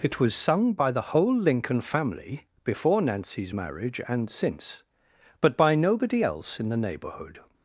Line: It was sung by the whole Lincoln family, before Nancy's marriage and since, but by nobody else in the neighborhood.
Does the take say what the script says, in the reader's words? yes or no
yes